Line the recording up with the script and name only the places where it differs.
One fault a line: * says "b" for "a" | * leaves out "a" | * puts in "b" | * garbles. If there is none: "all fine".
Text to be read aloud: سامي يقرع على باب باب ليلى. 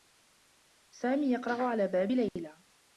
* leaves out "باب"